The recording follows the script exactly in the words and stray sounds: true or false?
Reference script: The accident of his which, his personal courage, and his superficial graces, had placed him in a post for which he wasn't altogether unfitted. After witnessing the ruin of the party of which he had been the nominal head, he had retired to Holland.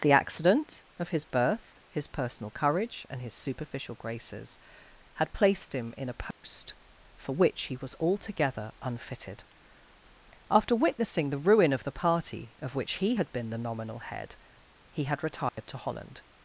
false